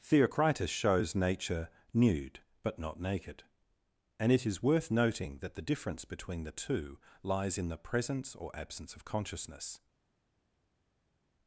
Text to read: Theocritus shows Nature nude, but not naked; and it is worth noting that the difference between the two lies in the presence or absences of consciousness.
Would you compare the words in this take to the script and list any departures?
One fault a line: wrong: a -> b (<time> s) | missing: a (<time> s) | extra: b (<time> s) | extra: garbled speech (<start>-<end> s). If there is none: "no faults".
wrong: absences -> absence (8.5 s)